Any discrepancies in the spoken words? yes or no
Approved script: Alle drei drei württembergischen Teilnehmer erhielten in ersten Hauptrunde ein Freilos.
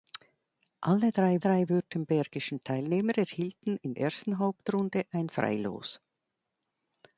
no